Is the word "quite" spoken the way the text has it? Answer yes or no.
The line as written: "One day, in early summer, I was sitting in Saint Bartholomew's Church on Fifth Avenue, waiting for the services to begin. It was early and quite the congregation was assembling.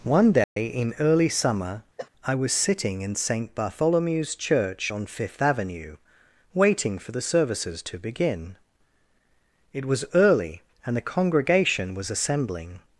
no